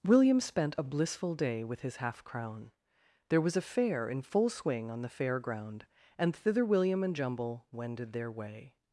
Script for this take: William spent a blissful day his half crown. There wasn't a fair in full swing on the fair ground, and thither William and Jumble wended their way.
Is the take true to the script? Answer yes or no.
no